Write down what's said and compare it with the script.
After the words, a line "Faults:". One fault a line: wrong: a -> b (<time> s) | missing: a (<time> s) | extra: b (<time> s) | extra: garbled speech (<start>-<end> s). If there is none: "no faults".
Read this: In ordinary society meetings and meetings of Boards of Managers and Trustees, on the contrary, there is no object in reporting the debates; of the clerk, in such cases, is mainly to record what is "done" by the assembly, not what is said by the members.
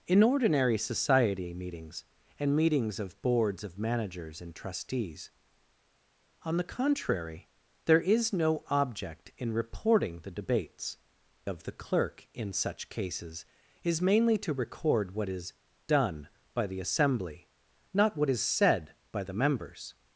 In ordinary society meetings and meetings of Boards of Managers and Trustees, on the contrary, there is no object in reporting the debates; of the clerk, in such cases, is mainly to record what is "done" by the assembly, not what is said by the members.
Faults:
no faults